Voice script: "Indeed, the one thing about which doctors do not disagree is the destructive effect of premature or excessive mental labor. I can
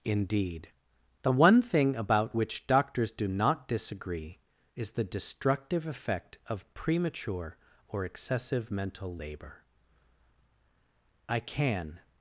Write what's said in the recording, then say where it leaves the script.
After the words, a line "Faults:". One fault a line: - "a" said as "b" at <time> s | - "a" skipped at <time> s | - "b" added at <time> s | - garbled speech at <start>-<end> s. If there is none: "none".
"Indeed, the one thing about which doctors do not disagree is the destructive effect of premature or excessive mental labor. I can
Faults:
none